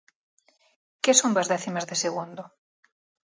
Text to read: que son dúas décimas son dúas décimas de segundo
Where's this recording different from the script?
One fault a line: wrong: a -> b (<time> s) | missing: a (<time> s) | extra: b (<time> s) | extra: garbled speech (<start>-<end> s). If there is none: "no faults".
missing: son dúas décimas (1.9 s)